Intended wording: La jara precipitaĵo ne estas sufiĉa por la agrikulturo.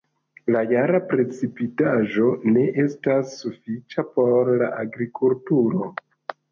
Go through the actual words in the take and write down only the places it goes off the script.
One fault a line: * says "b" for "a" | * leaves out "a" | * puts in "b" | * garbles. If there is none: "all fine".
all fine